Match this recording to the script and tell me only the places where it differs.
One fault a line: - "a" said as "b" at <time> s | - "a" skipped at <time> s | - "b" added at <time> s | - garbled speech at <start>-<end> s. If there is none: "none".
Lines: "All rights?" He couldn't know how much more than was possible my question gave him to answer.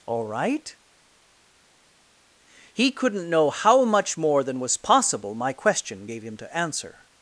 - "rights" said as "right" at 0.2 s